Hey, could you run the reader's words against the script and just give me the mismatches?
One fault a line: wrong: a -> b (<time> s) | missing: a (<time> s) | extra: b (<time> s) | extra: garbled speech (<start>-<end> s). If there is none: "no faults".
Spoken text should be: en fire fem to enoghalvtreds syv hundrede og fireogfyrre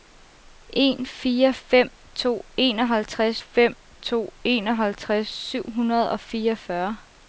extra: fem to enoghalvtreds (3.4 s)